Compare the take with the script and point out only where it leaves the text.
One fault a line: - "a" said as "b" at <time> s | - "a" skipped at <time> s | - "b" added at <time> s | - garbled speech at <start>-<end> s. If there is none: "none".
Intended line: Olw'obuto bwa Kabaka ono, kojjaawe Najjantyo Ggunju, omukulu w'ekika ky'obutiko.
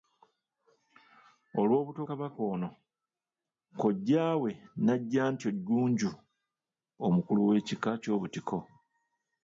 - "bwa" skipped at 2.0 s